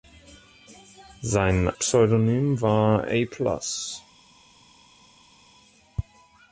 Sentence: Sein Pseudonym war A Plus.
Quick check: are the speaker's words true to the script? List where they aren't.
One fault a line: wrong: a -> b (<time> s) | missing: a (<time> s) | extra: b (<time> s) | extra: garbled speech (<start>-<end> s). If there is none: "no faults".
no faults